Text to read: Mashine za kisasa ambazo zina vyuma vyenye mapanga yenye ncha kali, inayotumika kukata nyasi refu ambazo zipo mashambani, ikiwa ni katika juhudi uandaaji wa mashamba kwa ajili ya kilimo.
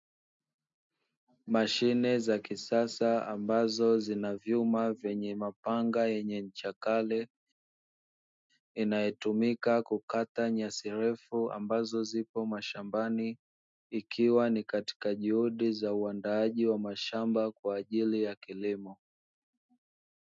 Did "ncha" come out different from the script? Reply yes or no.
no